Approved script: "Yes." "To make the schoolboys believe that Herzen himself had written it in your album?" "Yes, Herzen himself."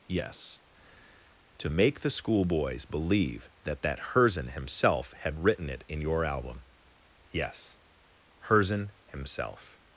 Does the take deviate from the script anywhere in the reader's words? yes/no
yes